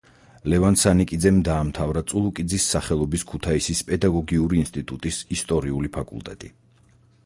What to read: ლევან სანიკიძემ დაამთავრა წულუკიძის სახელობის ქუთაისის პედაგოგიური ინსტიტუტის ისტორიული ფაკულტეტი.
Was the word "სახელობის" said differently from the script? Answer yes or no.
no